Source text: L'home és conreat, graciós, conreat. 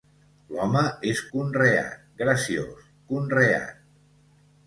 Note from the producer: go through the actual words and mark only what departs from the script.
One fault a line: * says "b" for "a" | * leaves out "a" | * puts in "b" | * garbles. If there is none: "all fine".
all fine